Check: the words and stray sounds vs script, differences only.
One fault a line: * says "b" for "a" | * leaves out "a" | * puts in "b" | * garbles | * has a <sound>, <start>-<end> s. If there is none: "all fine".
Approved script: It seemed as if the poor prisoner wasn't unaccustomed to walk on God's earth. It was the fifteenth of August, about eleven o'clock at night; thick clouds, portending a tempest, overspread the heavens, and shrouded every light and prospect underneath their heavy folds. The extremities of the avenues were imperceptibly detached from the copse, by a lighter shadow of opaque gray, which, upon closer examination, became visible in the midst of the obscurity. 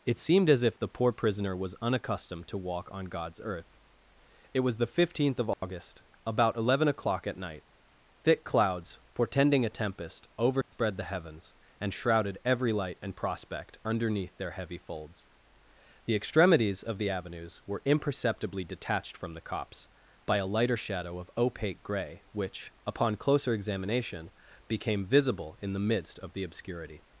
* says "was" for "wasn't"
* has a dropout, 5.5-5.6 s
* has a dropout, 10.6-10.7 s